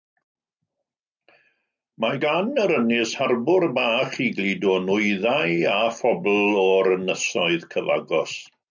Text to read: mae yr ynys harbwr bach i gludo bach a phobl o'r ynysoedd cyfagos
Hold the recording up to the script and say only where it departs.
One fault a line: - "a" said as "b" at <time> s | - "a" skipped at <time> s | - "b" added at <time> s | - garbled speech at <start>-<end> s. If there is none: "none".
- "gan" added at 2.2 s
- "bach" said as "nwyddau" at 4.9 s